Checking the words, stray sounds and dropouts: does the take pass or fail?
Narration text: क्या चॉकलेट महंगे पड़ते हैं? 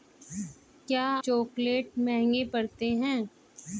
pass